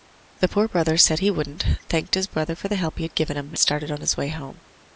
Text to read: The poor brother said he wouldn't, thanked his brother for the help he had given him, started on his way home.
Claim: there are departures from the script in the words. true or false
false